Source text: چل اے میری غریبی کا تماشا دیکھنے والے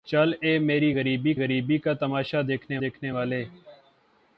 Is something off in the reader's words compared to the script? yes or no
yes